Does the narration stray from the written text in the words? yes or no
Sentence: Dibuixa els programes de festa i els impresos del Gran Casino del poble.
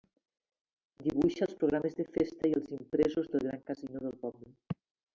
no